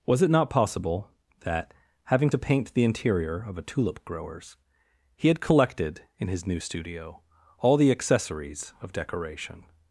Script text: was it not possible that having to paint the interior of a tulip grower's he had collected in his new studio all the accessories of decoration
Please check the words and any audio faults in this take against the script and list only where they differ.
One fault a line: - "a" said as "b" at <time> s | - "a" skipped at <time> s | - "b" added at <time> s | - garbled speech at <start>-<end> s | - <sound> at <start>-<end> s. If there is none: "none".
none